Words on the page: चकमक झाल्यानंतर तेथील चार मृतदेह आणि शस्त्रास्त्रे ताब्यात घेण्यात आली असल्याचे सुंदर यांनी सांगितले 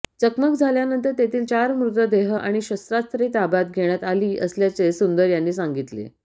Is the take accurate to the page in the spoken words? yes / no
yes